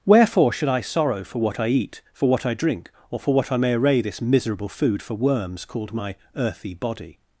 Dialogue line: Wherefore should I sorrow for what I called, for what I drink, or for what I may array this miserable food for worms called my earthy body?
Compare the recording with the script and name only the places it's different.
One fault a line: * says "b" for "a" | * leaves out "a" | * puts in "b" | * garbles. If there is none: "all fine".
* says "eat" for "called"